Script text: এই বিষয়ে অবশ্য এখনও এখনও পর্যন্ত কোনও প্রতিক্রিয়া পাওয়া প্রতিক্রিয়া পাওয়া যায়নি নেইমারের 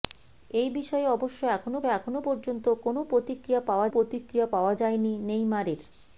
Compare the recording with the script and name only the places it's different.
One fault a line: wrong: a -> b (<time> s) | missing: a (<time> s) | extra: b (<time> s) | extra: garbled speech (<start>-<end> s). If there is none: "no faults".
no faults